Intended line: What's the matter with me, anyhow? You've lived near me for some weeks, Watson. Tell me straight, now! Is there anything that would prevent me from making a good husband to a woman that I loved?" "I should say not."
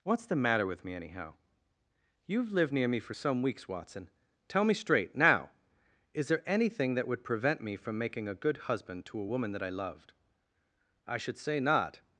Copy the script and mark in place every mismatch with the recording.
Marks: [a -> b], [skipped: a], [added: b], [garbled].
What's the matter with me, anyhow? You've lived near me for some weeks, Watson. Tell me straight, now! Is there anything that would prevent me from making a good husband to a woman that I loved?" "I should say not."